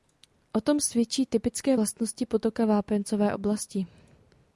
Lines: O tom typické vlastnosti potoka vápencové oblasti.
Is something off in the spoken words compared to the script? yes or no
yes